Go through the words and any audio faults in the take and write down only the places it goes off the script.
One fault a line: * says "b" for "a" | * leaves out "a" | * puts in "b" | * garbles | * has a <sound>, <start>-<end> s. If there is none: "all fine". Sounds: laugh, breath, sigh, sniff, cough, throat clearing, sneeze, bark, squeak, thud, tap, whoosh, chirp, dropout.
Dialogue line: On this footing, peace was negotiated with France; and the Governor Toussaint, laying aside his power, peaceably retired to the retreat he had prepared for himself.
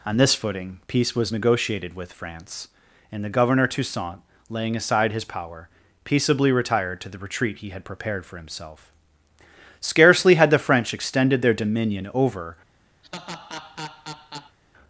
* puts in "Scarcely had the French extended their dominion over"
* has a laugh, 13.0-14.6 s